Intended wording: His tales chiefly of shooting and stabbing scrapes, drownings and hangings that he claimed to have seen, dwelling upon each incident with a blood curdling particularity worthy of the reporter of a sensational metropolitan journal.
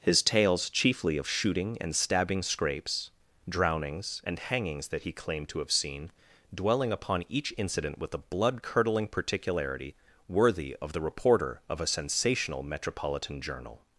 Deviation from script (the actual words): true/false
false